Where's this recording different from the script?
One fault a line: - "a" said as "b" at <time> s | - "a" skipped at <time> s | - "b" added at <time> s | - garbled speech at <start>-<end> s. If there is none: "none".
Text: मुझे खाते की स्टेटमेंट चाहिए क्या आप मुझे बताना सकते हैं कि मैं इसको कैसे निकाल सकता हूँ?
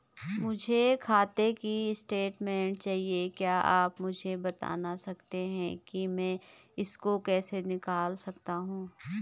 none